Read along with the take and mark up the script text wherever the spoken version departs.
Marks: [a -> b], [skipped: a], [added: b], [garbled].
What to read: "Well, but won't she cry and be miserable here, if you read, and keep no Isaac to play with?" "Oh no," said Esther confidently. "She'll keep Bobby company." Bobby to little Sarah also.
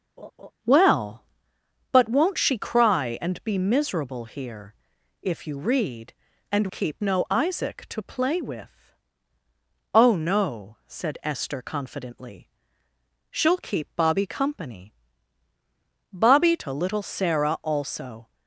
"Well, but won't she cry and be miserable here, if you read, and keep no Isaac to play with?" "Oh no," said Esther confidently. "She'll keep Bobby company." Bobby to little Sarah also.